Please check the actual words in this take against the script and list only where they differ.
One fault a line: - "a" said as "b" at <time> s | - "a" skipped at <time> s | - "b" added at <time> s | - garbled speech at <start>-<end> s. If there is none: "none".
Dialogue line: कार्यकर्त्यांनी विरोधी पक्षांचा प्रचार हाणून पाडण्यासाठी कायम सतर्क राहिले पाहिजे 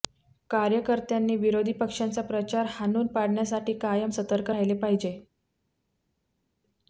none